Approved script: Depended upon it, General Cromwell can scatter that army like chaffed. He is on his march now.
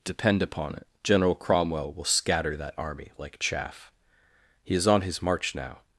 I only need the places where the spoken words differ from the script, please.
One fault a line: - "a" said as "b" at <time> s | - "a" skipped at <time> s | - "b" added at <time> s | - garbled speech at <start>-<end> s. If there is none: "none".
- "Depended" said as "Depend" at 0.0 s
- "can" said as "will" at 1.9 s
- "chaffed" said as "chaff" at 3.4 s